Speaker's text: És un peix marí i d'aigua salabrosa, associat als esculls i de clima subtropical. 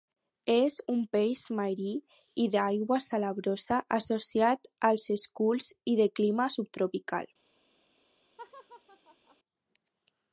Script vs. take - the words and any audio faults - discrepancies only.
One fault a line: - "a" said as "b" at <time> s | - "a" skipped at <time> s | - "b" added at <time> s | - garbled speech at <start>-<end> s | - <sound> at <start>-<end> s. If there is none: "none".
- laugh at 8.4-9.4 s